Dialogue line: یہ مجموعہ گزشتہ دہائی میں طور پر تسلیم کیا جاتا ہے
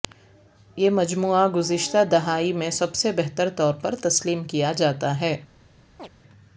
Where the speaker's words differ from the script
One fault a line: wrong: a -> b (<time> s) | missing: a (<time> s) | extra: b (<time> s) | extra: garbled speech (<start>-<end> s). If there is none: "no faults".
extra: سب سے بہتر (2.7 s)